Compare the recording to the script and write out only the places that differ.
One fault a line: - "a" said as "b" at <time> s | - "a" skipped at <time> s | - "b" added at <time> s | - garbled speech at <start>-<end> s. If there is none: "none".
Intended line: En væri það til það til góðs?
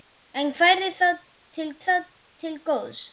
none